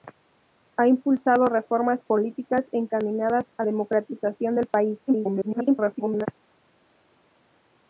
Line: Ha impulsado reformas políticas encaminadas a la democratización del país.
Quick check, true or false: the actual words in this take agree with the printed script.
false